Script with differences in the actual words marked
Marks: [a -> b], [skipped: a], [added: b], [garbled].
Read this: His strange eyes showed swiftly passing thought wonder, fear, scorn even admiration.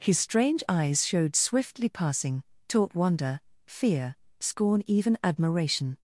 His strange eyes showed swiftly passing [thought -> taught] wonder, fear, scorn even admiration.